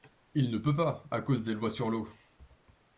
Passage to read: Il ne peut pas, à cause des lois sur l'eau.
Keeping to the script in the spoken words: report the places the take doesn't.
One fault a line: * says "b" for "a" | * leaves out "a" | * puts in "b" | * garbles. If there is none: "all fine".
all fine